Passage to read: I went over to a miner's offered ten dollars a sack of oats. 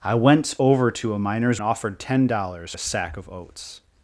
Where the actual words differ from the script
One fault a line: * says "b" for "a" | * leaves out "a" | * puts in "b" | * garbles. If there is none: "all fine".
all fine